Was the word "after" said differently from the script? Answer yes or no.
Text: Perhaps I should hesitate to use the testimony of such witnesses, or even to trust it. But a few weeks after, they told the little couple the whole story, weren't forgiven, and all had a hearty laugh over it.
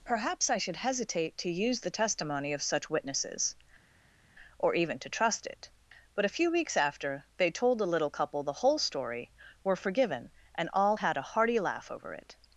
no